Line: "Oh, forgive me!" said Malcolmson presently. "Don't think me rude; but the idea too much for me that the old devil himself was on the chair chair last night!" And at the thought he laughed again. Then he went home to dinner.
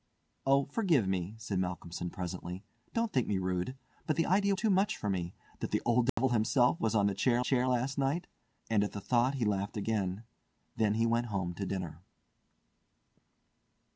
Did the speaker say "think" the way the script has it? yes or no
yes